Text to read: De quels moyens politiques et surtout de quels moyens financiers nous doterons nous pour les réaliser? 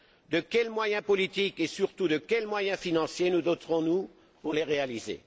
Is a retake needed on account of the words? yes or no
no